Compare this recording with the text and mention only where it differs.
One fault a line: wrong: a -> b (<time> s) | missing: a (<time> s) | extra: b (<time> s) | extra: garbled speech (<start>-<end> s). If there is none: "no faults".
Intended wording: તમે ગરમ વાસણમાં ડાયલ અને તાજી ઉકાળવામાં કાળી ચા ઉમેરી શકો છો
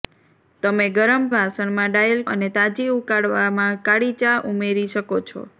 no faults